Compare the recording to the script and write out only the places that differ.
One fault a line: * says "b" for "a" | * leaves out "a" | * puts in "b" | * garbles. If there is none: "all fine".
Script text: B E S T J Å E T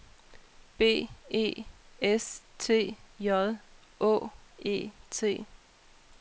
all fine